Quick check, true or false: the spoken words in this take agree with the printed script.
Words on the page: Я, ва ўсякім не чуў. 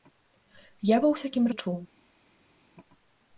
true